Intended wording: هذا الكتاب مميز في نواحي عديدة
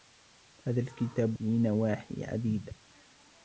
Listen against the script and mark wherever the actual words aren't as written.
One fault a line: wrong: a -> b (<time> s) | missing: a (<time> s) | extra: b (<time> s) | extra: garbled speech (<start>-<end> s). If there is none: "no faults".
missing: مميز (1.4 s)